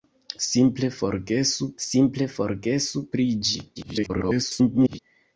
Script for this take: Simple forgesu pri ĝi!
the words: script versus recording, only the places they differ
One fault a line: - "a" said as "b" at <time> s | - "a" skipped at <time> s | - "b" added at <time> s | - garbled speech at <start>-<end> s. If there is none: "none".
- "simple forgesu" added at 1.8 s
- garbled speech at 3.8-5.0 s